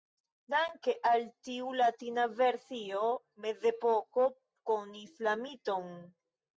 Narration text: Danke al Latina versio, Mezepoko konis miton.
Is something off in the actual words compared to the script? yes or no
yes